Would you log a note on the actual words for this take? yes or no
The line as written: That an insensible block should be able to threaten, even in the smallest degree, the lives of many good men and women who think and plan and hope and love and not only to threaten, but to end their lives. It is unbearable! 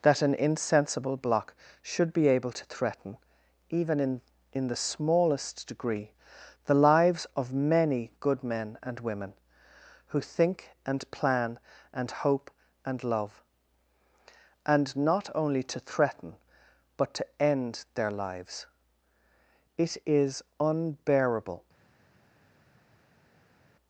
yes